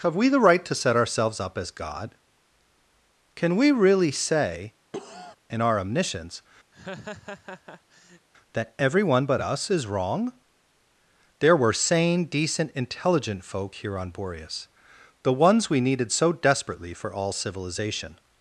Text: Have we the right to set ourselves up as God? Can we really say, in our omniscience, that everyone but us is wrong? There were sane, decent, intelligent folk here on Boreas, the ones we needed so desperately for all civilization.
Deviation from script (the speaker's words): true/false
false